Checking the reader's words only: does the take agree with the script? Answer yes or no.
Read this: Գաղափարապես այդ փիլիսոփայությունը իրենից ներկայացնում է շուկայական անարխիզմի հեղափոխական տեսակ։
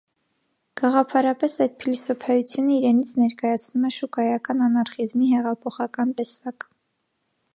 yes